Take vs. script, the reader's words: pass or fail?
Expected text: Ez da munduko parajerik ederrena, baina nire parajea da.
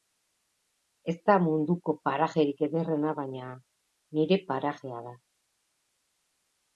pass